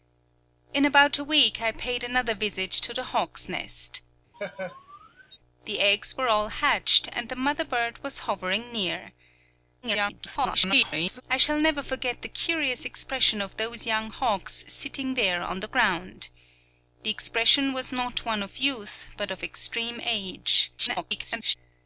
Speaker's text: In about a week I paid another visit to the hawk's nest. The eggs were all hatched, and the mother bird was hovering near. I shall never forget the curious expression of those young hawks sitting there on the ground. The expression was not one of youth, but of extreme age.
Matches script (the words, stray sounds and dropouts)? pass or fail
fail